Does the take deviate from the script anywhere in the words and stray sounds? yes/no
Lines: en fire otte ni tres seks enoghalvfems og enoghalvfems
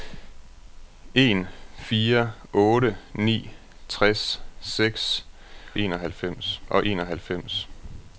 no